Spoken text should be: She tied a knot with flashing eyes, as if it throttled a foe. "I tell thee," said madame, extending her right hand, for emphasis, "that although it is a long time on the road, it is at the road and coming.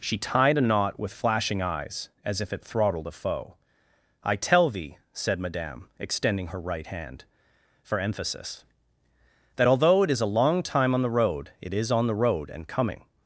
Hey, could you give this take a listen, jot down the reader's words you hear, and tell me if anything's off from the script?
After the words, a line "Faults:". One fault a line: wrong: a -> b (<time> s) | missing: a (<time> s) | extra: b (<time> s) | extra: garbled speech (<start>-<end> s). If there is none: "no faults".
She tied a knot with flashing eyes, as if it throttled a foe. "I tell thee," said madame, extending her right hand, for emphasis, "that although it is a long time on the road, it is on the road and coming.
Faults:
wrong: at -> on (11.9 s)